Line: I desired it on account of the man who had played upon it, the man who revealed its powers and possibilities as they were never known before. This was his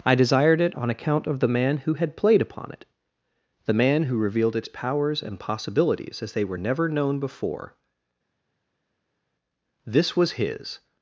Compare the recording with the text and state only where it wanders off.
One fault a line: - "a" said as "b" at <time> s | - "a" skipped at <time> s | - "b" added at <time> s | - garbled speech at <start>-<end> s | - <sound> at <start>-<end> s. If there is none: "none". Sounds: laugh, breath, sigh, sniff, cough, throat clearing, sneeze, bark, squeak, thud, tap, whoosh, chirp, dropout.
none